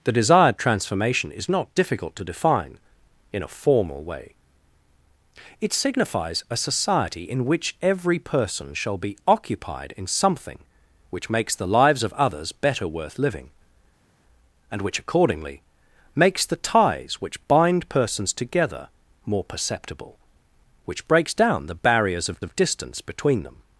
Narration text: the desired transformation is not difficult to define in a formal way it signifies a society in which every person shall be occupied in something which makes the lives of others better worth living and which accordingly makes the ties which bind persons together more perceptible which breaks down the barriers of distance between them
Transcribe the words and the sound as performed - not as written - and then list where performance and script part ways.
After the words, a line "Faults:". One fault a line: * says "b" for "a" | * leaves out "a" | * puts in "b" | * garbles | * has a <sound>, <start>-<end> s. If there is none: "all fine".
the desired transformation is not difficult to define in a formal way it signifies a society in which every person shall be occupied in something which makes the lives of others better worth living and which accordingly makes the ties which bind persons together more perceptible which breaks down the barriers of of distance between them
Faults:
* puts in "of"